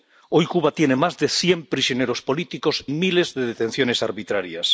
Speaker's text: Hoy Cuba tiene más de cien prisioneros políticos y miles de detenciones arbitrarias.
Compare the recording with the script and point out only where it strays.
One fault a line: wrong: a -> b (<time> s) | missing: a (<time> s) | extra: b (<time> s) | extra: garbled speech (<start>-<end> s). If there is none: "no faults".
missing: y (2.9 s)